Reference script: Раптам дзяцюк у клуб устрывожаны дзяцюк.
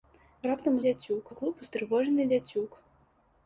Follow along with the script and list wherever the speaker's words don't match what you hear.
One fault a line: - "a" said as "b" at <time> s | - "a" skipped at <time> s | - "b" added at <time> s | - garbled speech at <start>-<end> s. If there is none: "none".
none